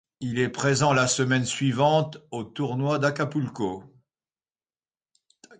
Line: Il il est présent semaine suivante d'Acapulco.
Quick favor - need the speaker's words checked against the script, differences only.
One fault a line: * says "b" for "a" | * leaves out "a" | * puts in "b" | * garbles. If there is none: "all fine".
* leaves out "il"
* puts in "la"
* puts in "au tournoi"